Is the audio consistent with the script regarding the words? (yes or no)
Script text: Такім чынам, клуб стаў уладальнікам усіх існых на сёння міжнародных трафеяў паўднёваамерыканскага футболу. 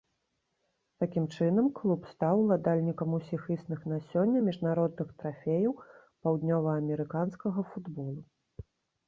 yes